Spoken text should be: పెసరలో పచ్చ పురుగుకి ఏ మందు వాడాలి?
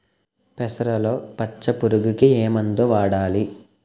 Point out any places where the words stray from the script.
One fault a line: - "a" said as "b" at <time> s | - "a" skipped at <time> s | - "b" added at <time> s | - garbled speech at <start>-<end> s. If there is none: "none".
none